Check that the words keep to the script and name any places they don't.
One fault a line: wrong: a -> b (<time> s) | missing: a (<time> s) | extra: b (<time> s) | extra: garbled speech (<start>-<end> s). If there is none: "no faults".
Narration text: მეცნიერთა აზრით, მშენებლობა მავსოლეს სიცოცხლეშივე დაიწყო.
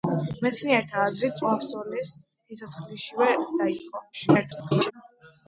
missing: მშენებლობა (1.4 s)
extra: garbled speech (4.1-4.9 s)